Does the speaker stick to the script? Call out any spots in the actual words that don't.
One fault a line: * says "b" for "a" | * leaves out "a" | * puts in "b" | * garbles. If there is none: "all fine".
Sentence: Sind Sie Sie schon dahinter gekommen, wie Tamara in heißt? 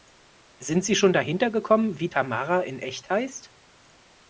* leaves out "Sie"
* puts in "echt"